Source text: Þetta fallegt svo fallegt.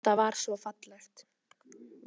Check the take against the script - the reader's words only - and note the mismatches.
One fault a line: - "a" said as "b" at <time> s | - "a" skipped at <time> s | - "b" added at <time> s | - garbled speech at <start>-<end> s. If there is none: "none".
- "fallegt" said as "var" at 0.2 s